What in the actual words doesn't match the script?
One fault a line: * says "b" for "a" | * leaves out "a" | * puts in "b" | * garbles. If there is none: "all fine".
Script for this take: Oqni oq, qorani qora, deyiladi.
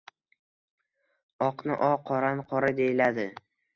all fine